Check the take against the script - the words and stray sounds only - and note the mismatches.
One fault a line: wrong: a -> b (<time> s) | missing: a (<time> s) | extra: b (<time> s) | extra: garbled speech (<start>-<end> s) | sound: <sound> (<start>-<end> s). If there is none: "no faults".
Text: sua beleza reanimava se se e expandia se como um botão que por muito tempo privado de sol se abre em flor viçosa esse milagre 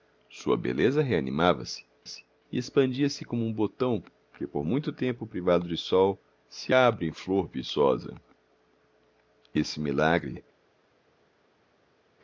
no faults